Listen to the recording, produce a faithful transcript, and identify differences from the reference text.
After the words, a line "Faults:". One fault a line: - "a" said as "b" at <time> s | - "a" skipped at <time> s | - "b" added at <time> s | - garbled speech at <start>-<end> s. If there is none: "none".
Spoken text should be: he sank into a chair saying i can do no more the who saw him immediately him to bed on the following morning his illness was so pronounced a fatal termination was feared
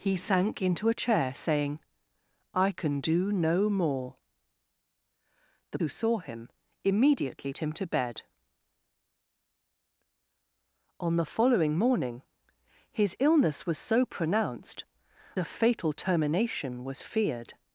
he sank into a chair saying i can do no more the who saw him immediately him to bed on the following morning his illness was so pronounced a fatal termination was feared
Faults:
none